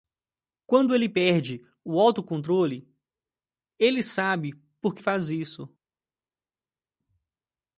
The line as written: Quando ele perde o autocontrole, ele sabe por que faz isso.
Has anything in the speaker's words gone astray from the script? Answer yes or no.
no